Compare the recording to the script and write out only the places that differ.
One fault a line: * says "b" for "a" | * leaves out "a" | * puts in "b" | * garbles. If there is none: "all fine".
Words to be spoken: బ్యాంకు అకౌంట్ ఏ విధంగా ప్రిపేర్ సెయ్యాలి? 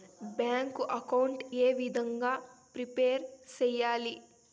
all fine